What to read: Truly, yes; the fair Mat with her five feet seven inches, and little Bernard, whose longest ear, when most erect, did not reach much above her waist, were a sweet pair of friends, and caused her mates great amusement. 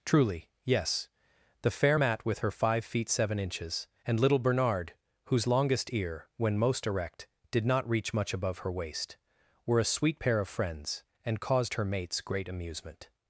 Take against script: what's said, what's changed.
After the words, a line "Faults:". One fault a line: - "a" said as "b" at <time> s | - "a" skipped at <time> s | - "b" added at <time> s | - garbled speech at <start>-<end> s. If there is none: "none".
Truly, yes; the fair Mat with her five feet seven inches, and little Bernard, whose longest ear, when most erect, did not reach much above her waist, were a sweet pair of friends, and caused her mates great amusement.
Faults:
none